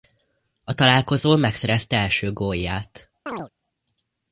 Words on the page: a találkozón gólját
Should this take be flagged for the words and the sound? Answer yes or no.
yes